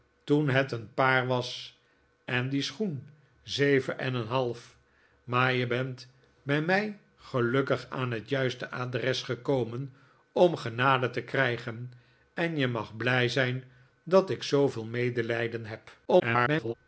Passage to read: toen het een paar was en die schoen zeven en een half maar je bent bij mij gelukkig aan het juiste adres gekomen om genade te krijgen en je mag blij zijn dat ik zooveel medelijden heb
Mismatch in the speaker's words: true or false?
true